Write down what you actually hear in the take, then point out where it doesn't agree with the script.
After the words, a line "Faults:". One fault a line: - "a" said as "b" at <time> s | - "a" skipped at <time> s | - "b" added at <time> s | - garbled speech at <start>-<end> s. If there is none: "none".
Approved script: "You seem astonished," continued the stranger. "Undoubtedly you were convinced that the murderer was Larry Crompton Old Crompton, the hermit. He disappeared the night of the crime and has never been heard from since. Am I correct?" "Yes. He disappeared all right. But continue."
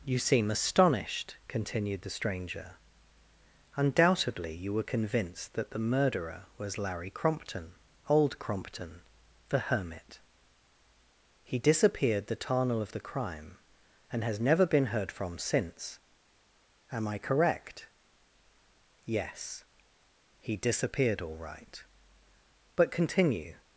"You seem astonished," continued the stranger. "Undoubtedly you were convinced that the murderer was Larry Crompton Old Crompton, the hermit. He disappeared the tarnal of the crime and has never been heard from since. Am I correct?" "Yes. He disappeared all right. But continue."
Faults:
- "night" said as "tarnal" at 12.4 s